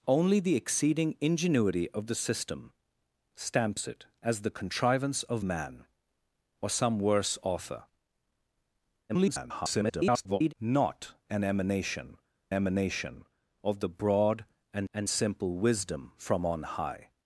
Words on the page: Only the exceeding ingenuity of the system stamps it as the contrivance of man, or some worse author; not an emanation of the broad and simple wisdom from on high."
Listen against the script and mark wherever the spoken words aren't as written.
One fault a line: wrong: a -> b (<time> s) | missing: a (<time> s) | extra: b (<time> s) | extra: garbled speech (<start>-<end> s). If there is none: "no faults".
extra: garbled speech (9.1-10.5 s)
extra: emanation (12.5 s)
extra: and (14.9 s)